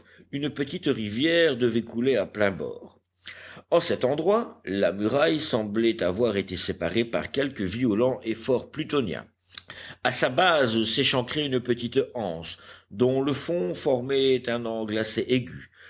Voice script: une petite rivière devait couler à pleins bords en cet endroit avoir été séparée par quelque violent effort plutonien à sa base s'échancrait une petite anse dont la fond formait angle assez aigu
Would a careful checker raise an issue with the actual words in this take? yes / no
yes